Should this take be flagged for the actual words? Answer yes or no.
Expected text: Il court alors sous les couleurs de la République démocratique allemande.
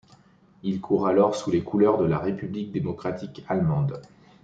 no